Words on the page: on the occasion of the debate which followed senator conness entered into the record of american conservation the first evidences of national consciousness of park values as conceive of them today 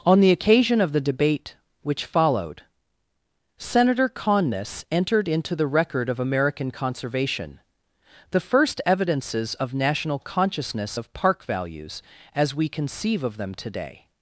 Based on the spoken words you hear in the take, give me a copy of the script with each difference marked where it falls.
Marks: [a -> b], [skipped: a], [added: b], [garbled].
on the occasion of the debate which followed senator conness entered into the record of american conservation the first evidences of national consciousness of park values as [added: we] conceive of them today